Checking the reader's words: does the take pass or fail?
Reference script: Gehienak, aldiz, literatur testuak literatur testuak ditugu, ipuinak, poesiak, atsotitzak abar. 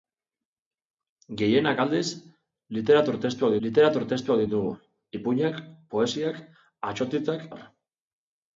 pass